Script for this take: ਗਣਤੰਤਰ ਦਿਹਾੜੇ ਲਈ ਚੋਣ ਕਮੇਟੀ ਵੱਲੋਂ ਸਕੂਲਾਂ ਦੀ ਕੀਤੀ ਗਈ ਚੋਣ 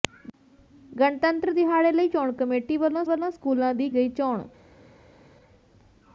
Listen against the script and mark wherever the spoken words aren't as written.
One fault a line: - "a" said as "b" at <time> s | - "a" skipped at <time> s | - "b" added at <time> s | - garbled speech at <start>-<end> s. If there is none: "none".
- "ਵੱਲੋਂ" added at 3.0 s
- "ਕੀਤੀ" skipped at 3.9 s